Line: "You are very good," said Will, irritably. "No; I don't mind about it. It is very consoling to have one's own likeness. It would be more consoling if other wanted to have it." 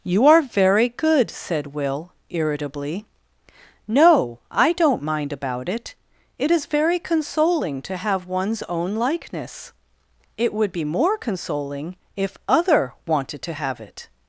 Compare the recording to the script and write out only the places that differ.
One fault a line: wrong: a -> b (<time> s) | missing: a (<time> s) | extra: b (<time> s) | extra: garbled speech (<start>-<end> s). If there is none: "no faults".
no faults